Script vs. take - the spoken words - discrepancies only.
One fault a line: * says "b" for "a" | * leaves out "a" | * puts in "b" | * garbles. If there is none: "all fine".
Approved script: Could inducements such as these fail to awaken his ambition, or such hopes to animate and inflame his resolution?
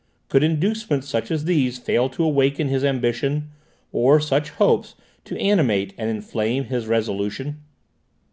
all fine